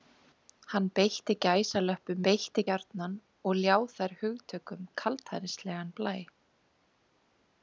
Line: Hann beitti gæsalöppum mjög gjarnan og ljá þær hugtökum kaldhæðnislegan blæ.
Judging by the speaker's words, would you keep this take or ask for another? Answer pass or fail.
fail